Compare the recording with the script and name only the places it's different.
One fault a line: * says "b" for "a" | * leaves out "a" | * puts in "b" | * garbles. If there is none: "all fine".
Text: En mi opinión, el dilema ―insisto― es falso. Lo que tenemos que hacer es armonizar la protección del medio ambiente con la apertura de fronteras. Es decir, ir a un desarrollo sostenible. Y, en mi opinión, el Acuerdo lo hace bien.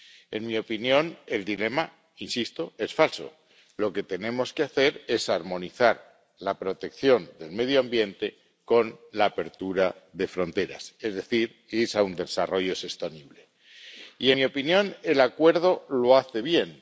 * leaves out "en"